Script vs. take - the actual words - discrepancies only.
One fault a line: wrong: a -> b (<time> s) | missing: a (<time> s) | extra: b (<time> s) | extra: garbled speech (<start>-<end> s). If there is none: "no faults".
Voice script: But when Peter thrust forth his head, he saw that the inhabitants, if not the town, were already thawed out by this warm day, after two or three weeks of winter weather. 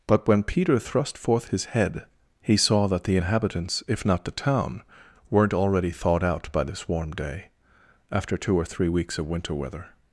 wrong: were -> weren't (5.3 s)